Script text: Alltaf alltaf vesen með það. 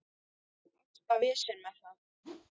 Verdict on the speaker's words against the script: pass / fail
fail